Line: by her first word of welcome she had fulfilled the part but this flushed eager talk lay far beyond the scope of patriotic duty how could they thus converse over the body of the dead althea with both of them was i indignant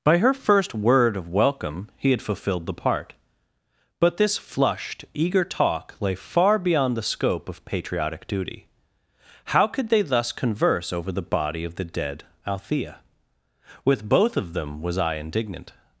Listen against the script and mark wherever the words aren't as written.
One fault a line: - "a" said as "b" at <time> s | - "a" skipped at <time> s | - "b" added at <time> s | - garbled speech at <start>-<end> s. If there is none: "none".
- "she" said as "he" at 1.9 s